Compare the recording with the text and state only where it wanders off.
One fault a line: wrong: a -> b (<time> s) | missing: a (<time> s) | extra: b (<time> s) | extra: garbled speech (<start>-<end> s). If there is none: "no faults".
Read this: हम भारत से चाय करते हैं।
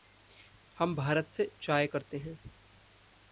no faults